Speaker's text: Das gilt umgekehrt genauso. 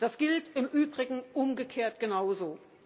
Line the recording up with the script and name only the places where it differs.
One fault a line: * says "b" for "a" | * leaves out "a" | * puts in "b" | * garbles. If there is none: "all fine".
* puts in "im Übrigen"